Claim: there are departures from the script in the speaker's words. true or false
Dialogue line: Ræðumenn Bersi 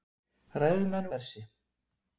false